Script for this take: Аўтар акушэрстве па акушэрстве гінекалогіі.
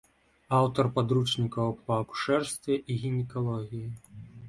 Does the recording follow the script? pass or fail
fail